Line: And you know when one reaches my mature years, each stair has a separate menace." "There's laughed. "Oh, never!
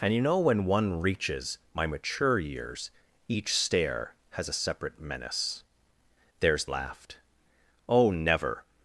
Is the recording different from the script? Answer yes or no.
no